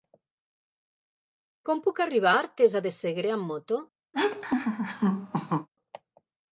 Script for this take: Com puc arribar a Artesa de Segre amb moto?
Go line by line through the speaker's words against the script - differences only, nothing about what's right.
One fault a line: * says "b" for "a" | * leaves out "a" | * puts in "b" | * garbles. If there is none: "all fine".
all fine